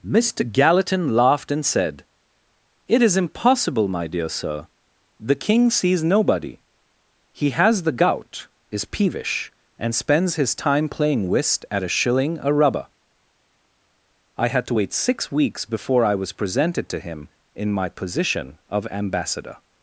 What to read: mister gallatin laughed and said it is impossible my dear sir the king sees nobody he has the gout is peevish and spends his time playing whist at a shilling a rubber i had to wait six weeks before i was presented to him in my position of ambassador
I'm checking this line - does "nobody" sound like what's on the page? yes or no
yes